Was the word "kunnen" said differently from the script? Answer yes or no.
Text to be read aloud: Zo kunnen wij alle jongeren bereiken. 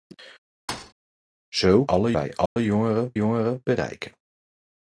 yes